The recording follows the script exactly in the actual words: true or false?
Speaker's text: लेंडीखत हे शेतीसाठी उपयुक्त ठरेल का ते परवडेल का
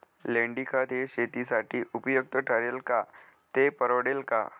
true